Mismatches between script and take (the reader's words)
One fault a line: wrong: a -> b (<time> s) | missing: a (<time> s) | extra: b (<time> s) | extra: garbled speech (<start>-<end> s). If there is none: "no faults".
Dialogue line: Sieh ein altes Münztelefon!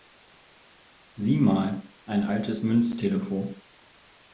extra: mal (1.4 s)